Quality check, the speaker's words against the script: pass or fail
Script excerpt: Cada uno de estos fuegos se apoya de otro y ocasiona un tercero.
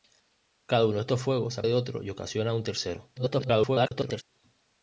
fail